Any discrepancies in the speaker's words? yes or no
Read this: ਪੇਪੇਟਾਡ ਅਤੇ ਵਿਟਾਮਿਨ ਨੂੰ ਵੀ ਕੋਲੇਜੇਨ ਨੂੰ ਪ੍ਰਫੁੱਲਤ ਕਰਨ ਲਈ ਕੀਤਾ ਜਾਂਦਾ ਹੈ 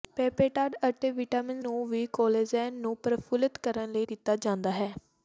no